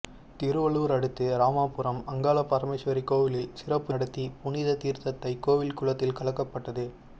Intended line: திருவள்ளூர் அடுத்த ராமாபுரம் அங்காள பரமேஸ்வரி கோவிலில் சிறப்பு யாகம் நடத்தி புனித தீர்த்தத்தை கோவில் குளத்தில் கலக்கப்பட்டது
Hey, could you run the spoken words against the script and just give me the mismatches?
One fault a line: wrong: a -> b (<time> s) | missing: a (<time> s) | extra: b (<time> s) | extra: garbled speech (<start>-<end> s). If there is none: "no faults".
missing: யாகம் (3.9 s)